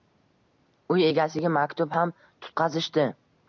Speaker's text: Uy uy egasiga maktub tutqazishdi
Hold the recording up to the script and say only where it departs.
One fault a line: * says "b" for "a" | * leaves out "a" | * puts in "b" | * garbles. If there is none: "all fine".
* leaves out "uy"
* puts in "ham"